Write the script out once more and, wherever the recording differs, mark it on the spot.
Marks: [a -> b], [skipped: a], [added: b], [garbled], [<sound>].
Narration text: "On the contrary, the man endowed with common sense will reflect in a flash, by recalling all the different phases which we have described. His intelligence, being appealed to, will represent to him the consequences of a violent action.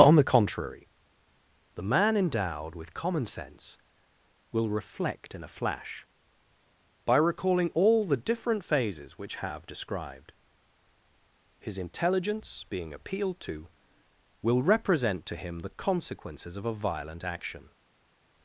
"On the contrary, the man endowed with common sense will reflect in a flash, by recalling all the different phases which [skipped: we] have described. His intelligence, being appealed to, will represent to him the consequences of a violent action.